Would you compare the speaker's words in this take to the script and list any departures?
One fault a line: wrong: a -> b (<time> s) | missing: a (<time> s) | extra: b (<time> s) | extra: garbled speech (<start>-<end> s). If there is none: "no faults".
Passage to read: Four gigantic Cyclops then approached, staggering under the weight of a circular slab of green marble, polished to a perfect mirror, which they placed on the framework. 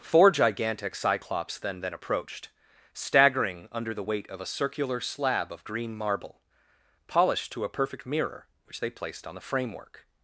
extra: then (1.8 s)